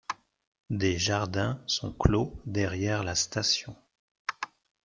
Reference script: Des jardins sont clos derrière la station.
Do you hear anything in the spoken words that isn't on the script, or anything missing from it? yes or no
no